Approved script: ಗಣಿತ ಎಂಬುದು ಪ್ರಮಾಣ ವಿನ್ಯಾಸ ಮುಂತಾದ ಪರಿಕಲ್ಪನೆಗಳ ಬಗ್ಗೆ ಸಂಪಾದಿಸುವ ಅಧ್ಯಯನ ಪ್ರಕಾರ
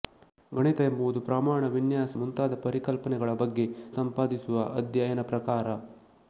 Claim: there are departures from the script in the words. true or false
false